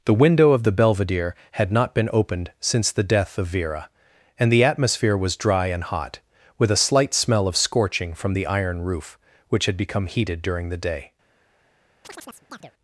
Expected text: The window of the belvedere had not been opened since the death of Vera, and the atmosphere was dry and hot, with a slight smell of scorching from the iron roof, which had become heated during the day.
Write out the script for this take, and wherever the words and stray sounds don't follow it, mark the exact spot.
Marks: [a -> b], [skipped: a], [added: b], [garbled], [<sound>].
The window of the belvedere had not been opened since the death of Vera, and the atmosphere was dry and hot, with a slight smell of scorching from the iron roof, which had become heated during the day. [chirp]